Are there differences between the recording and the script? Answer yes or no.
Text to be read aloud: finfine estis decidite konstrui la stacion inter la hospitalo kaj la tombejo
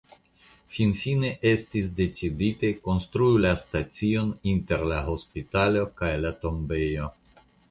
no